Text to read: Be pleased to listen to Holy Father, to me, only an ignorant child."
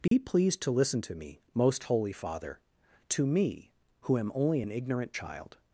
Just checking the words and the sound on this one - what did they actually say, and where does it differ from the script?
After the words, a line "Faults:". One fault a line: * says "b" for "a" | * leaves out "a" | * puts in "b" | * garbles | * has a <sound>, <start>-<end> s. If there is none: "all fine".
Be pleased to listen to me, most Holy Father, to me, who am only an ignorant child."
Faults:
* has a dropout, 0.1-0.1 s
* puts in "me most"
* puts in "who am"